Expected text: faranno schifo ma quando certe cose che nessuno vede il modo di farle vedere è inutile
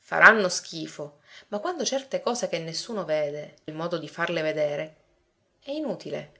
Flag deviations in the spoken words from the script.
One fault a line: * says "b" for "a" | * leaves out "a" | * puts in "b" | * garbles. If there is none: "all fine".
all fine